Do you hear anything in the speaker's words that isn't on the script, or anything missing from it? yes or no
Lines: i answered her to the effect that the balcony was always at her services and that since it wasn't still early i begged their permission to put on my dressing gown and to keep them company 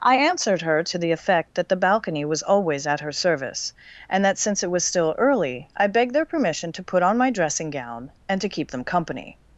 yes